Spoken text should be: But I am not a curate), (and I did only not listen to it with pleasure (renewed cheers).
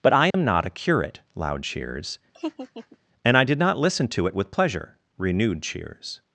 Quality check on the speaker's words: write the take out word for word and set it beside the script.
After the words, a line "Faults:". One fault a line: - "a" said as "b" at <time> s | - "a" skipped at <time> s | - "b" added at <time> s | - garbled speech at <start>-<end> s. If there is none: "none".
But I am not a curate (loud cheers), and I did not listen to it with pleasure (renewed cheers).
Faults:
- "loud cheers" added at 1.4 s
- "only" skipped at 3.6 s